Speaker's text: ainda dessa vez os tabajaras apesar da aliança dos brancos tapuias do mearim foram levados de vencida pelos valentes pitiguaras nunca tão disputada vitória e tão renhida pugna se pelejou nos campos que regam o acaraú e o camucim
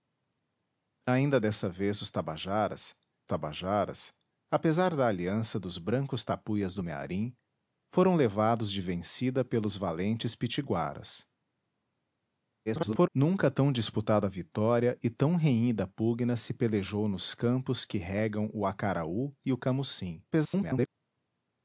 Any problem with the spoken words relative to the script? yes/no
yes